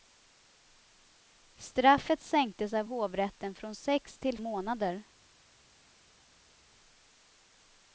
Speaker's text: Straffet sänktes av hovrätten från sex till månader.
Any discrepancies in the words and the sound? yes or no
no